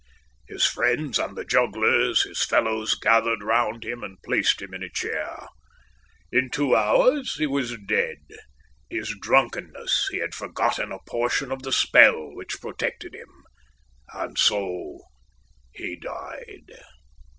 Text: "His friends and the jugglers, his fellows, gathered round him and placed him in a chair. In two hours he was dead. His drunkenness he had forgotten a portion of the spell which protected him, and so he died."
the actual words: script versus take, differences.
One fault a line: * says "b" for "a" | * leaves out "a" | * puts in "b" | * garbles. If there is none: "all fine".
all fine